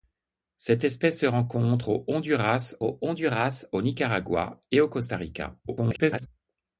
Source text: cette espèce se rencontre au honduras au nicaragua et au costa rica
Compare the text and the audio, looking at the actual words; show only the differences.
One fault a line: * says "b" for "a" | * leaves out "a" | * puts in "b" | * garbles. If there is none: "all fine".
* puts in "honduras au"
* garbles